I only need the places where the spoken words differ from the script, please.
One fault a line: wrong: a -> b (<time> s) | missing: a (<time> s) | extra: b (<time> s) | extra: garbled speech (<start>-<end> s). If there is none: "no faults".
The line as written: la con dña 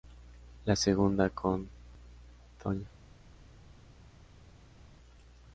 extra: segunda (0.8 s)